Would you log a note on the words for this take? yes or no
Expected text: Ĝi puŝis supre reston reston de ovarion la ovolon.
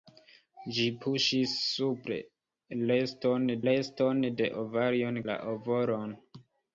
no